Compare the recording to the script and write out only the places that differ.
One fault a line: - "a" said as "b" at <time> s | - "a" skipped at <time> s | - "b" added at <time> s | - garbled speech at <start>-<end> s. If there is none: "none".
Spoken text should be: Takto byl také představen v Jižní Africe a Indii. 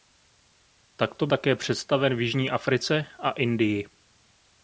- "byl" skipped at 1.3 s